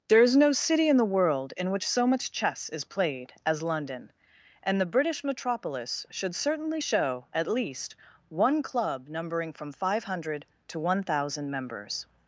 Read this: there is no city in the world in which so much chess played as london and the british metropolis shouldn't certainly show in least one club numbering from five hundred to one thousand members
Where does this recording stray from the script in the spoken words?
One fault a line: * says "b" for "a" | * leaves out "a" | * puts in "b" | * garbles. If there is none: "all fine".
* puts in "is"
* says "should" for "shouldn't"
* says "at" for "in"